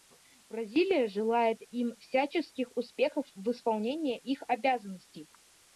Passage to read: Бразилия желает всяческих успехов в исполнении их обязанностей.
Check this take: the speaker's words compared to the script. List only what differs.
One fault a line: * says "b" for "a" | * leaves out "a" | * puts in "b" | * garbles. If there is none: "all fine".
* puts in "им"